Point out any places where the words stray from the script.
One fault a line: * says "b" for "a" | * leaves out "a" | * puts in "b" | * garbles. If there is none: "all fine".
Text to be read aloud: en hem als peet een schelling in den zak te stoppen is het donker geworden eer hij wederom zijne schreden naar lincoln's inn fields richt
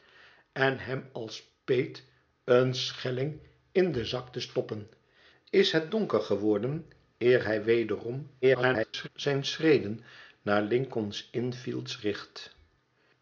* garbles